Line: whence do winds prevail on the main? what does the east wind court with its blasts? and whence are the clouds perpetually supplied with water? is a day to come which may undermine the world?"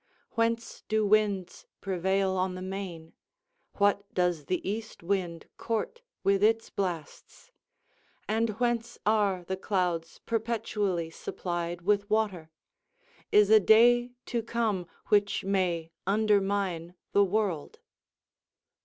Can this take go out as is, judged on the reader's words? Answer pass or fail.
pass